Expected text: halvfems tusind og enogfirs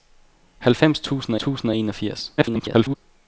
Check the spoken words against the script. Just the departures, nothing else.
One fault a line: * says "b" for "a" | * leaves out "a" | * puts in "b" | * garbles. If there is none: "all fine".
* puts in "tusind"
* garbles